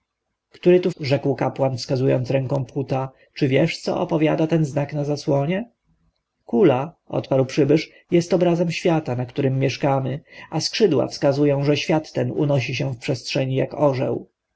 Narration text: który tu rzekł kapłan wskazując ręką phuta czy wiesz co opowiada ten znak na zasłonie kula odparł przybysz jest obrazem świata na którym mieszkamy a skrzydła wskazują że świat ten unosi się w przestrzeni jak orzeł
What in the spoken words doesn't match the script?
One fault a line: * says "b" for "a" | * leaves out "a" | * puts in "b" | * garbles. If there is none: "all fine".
all fine